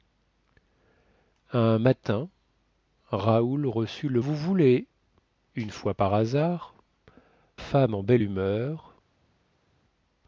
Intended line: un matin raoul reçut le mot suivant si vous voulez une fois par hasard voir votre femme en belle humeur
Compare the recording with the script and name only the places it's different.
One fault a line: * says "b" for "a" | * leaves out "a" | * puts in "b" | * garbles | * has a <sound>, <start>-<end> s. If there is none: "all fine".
* leaves out "mot suivant si"
* leaves out "voir votre"